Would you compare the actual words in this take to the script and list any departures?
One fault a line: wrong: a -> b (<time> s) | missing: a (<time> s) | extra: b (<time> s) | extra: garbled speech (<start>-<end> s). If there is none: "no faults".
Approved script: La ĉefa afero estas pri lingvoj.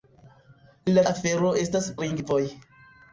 missing: ĉefa (1.0 s)
missing: pri (1.9 s)